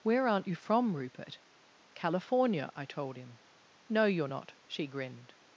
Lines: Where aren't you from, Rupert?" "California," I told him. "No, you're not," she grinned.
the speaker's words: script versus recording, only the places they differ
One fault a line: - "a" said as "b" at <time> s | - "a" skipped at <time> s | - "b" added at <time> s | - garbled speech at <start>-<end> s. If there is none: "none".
none